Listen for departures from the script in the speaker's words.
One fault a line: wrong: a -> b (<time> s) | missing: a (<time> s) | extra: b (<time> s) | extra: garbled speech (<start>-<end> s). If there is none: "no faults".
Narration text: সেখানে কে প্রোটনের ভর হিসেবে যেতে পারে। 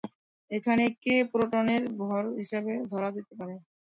wrong: সেখানে -> এখানে (0.5 s)
extra: ধরা (2.9 s)